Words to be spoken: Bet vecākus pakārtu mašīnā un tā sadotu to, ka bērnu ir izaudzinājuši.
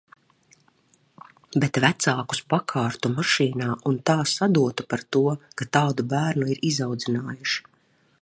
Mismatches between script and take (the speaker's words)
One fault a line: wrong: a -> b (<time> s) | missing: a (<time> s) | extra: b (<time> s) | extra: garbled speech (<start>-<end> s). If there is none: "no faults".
extra: par (4.9 s)
extra: tādu (5.8 s)